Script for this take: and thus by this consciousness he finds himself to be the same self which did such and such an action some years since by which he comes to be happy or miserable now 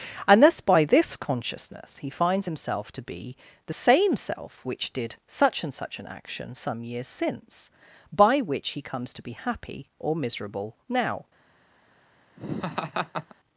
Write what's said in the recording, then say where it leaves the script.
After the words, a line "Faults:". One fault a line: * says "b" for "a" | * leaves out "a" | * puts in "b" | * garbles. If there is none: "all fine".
and thus by this consciousness he finds himself to be the same self which did such and such an action some years since by which he comes to be happy or miserable now
Faults:
all fine